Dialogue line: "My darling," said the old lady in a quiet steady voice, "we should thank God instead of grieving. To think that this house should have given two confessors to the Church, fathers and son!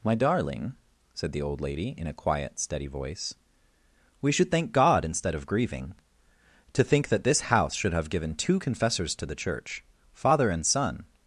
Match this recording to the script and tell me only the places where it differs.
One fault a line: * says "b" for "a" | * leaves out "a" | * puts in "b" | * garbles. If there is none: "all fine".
* says "father" for "fathers"